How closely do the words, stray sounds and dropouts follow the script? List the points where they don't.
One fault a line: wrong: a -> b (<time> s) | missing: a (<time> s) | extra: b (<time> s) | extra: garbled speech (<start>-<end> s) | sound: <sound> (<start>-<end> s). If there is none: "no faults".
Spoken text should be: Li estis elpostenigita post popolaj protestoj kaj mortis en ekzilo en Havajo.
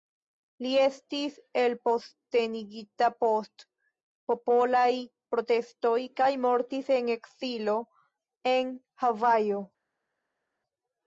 no faults